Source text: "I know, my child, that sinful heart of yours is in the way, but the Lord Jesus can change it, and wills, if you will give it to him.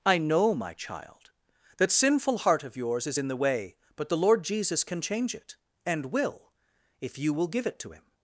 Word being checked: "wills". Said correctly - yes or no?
no